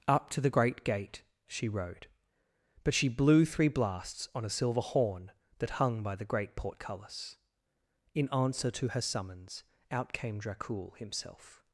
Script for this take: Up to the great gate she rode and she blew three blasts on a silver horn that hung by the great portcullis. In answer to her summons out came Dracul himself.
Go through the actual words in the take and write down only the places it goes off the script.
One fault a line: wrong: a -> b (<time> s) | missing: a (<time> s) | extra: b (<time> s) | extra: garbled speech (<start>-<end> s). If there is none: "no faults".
wrong: and -> but (2.8 s)